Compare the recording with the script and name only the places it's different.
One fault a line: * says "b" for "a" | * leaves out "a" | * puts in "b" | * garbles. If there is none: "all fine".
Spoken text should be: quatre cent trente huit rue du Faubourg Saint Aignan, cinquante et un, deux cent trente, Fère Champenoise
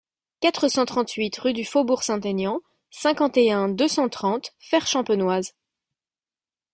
all fine